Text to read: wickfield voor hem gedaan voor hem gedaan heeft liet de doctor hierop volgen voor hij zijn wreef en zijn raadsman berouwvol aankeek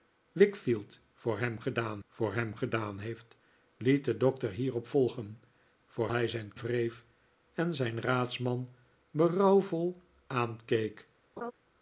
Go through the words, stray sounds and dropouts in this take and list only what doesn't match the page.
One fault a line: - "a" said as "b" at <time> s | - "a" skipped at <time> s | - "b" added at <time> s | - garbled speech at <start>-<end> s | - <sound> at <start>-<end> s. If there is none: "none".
- laugh at 11.4-11.5 s